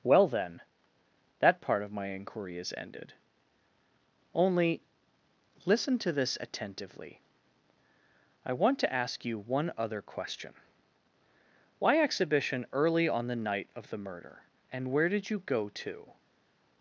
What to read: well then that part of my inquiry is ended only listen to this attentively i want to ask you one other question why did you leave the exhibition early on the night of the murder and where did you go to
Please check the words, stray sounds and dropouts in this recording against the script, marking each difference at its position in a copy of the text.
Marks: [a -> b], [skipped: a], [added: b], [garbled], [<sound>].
well then that part of my inquiry is ended only listen to this attentively i want to ask you one other question why [skipped: did you leave the] exhibition early on the night of the murder and where did you go to